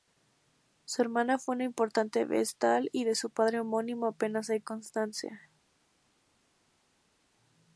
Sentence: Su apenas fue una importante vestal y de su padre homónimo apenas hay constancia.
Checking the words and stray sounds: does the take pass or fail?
fail